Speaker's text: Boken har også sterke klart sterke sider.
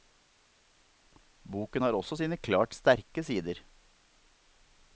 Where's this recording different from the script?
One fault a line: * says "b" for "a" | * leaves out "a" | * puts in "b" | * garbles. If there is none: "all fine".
* says "sine" for "sterke"